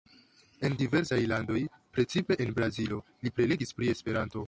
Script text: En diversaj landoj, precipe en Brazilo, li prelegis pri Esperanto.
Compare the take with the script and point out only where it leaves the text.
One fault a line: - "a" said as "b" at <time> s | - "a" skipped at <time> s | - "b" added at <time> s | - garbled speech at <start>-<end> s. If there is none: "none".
none